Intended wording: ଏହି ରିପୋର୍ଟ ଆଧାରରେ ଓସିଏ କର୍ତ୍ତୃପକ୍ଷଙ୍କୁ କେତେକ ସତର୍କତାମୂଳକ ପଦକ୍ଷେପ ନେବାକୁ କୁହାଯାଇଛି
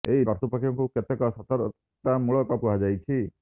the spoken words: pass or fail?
fail